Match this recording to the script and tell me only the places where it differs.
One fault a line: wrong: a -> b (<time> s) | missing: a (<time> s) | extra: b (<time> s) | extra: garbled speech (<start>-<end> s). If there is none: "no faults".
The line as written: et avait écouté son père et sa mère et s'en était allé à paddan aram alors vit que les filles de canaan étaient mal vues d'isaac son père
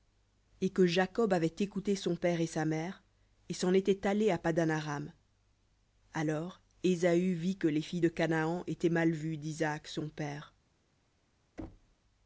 extra: que jacob (0.7 s)
extra: ésaü (6.8 s)